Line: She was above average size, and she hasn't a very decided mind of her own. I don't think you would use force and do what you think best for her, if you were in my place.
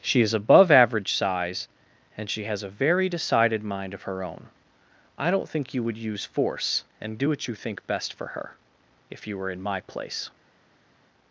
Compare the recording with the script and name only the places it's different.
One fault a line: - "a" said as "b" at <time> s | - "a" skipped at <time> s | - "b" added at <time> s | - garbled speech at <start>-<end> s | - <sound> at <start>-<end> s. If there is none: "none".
- "was" said as "is" at 0.2 s
- "hasn't" said as "has" at 2.5 s